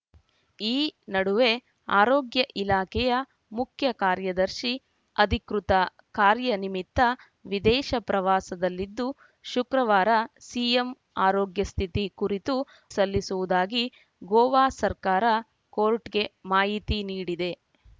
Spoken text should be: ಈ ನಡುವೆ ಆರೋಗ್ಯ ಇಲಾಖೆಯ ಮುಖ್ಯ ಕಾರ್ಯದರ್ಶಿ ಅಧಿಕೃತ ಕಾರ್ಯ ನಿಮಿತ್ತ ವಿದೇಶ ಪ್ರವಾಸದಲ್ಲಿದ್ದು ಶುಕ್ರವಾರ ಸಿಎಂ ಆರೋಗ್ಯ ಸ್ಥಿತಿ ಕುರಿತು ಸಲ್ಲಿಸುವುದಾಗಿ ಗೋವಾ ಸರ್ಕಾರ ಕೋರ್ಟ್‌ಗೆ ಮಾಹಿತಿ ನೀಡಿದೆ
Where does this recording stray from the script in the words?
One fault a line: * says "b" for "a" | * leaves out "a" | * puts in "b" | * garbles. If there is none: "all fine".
all fine